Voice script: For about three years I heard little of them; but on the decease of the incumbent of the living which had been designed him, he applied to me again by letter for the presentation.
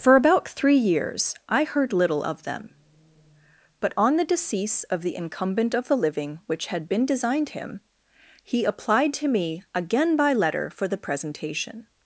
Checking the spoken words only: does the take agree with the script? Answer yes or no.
yes